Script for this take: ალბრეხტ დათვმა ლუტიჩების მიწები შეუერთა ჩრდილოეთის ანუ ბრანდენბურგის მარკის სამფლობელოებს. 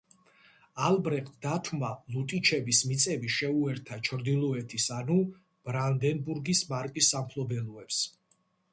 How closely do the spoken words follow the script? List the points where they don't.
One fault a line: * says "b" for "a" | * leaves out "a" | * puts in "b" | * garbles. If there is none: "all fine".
all fine